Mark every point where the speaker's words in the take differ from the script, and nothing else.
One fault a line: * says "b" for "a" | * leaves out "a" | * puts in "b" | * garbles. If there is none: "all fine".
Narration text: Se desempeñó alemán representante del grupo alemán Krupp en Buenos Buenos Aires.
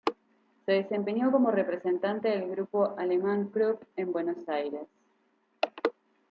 * says "como" for "alemán"
* leaves out "Buenos"